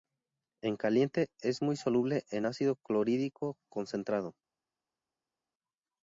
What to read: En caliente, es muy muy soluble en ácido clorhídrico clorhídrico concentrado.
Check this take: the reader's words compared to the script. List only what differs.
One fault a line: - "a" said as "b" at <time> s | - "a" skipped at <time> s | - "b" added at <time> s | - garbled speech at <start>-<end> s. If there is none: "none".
- "muy" skipped at 1.8 s
- "clorhídrico" skipped at 3.6 s